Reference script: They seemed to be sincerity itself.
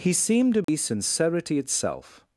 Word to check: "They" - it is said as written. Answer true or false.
false